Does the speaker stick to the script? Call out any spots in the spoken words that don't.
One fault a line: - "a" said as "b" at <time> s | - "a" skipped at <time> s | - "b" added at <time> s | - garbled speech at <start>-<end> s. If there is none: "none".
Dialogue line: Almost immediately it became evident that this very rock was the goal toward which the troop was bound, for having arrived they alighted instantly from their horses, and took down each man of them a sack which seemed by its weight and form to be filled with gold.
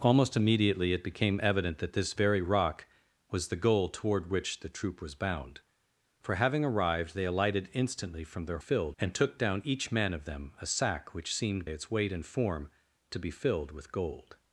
- "horses" said as "filled" at 8.6 s
- "by" skipped at 11.7 s